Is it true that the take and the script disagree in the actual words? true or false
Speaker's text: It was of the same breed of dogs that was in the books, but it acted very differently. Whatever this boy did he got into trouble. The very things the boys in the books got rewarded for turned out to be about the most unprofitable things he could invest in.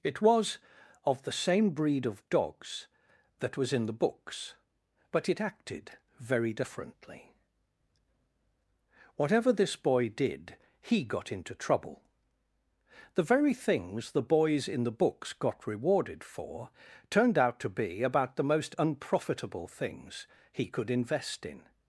false